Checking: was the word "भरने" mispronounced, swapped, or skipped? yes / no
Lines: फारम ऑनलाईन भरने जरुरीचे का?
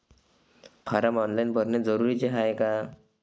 no